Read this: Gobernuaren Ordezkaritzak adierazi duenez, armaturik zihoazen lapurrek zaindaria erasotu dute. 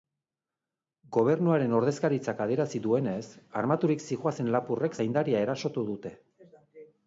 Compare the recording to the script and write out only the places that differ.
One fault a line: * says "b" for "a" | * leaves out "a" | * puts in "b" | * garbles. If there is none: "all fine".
all fine